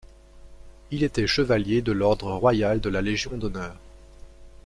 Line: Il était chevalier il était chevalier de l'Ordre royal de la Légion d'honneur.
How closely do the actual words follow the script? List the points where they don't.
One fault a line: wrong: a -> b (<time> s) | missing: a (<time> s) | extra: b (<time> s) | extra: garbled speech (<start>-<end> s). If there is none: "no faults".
missing: il était chevalier (1.8 s)